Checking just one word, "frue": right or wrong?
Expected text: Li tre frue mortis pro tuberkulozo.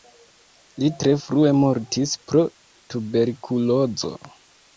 right